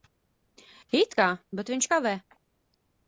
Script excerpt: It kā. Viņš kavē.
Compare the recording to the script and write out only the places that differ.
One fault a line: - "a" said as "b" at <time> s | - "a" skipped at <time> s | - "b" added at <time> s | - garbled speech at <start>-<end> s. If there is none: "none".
- "Bet" added at 1.6 s